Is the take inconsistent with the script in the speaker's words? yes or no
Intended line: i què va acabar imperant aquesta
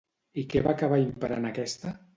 no